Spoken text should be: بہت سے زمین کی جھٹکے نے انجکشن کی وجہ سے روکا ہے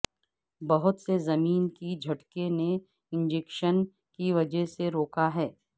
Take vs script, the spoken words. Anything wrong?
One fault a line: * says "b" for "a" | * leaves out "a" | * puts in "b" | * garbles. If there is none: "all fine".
all fine